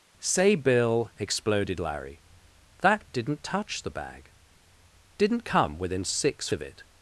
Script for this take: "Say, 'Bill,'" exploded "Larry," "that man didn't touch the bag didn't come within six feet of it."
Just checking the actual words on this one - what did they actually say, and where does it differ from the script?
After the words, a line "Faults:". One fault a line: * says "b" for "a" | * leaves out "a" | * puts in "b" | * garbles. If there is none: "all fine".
"Say, 'Bill,'" exploded "Larry," "that didn't touch the bag didn't come within six of it."
Faults:
* leaves out "man"
* leaves out "feet"